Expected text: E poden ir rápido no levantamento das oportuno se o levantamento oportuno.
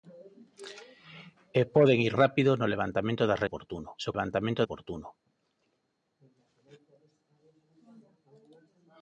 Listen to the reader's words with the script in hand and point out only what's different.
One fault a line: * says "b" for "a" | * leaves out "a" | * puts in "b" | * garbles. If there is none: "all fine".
all fine